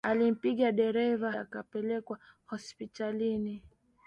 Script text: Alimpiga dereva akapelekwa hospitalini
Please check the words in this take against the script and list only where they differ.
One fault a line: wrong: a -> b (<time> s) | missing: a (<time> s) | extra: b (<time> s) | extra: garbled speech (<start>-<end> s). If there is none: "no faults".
no faults